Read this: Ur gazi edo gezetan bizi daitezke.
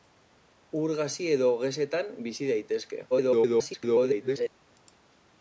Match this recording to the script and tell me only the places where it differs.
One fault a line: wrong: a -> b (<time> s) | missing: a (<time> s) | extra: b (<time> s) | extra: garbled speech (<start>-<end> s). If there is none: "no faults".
extra: garbled speech (3.1-4.5 s)